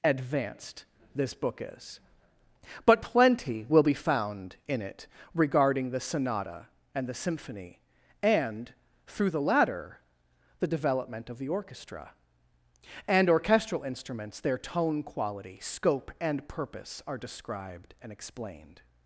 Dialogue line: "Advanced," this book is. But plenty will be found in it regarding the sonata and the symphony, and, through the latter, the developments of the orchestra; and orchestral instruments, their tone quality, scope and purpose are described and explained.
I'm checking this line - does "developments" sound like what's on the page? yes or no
no